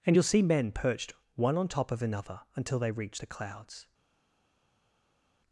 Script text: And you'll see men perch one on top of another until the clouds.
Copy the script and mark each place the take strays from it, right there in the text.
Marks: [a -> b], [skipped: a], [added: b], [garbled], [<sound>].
And you'll see men [perch -> perched] one on top of another until [added: they reach] the clouds.